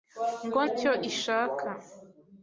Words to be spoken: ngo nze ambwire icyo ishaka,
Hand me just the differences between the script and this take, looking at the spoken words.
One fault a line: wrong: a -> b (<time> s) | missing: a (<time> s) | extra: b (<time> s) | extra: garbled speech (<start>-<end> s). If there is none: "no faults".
missing: nze ambwire (0.6 s)